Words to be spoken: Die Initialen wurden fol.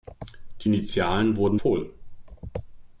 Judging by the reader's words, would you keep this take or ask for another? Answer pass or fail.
pass